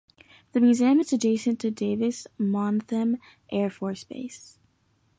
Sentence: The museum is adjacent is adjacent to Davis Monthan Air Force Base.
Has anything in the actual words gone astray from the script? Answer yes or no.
yes